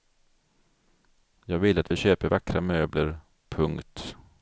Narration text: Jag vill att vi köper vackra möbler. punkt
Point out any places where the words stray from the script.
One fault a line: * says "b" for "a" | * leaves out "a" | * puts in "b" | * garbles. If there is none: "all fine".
all fine